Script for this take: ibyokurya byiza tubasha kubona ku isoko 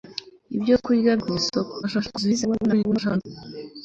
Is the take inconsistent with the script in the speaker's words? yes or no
yes